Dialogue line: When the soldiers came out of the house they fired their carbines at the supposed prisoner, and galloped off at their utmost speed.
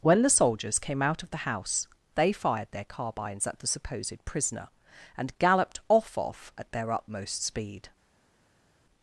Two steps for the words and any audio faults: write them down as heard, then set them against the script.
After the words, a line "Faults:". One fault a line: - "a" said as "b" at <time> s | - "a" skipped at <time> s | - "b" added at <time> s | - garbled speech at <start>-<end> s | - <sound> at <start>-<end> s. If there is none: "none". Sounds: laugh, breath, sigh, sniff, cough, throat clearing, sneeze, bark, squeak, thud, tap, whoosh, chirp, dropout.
When the soldiers came out of the house they fired their carbines at the supposed prisoner, and galloped off off at their utmost speed.
Faults:
- "off" added at 6.2 s